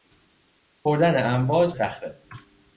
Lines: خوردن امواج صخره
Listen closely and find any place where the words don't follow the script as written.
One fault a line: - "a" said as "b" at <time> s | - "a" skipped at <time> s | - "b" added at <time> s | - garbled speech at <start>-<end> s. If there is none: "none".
none